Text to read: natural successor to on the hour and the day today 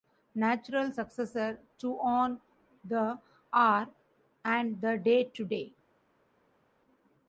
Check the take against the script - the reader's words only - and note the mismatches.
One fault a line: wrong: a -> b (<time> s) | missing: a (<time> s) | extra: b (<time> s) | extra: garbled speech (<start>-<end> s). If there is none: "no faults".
no faults